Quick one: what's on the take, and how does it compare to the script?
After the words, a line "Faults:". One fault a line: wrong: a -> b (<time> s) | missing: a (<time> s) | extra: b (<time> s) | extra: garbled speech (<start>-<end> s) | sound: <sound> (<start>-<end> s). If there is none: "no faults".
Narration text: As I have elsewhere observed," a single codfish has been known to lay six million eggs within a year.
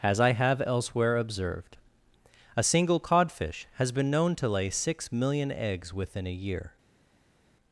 As I have elsewhere observed," a single codfish has been known to lay six million eggs within a year.
Faults:
no faults